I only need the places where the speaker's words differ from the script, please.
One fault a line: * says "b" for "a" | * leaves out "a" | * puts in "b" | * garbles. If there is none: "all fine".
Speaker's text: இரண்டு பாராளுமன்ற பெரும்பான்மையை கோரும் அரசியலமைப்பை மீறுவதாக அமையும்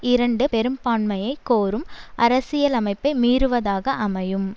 * leaves out "பாராளுமன்ற"